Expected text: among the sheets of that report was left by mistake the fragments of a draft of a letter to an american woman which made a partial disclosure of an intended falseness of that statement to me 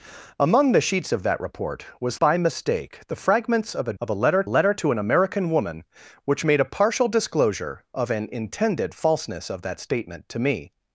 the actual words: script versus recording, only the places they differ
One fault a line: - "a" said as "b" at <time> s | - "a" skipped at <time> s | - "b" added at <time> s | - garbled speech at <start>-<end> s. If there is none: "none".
- "left" skipped at 2.2 s
- "draft" skipped at 3.9 s
- "letter" added at 4.5 s